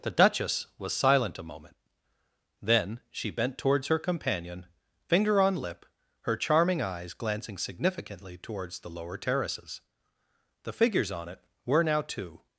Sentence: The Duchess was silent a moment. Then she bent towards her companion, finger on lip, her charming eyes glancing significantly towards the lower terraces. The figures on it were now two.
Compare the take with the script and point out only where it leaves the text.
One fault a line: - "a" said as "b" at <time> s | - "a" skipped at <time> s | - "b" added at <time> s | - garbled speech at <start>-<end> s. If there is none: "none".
none